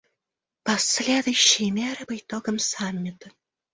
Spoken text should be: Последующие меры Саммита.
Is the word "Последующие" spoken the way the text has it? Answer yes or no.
yes